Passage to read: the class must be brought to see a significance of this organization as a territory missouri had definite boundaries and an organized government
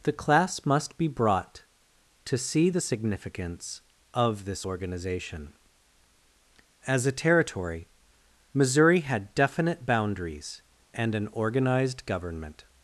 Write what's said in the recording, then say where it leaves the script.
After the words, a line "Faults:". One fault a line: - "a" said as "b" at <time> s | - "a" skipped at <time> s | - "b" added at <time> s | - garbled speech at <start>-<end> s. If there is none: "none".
the class must be brought to see the significance of this organization as a territory missouri had definite boundaries and an organized government
Faults:
- "a" said as "the" at 2.7 s